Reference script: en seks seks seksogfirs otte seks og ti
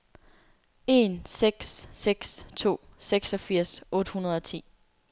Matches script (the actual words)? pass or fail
fail